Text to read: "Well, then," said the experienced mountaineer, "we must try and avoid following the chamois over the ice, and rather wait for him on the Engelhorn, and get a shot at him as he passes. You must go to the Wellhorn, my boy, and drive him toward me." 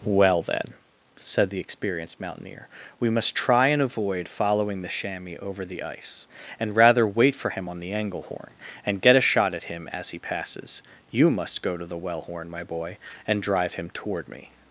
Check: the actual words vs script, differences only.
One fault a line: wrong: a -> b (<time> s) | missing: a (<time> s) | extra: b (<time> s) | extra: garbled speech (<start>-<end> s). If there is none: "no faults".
no faults